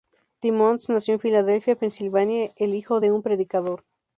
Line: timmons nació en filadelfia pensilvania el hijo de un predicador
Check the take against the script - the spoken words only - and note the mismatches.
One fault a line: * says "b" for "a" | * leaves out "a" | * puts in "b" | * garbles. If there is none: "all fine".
all fine